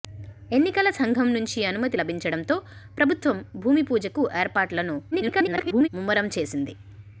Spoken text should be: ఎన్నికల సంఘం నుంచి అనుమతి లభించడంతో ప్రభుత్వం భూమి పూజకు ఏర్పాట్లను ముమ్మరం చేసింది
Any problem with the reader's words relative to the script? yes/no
yes